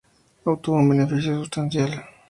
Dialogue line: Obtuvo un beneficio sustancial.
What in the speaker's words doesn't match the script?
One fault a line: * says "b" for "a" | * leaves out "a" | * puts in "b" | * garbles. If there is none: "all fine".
all fine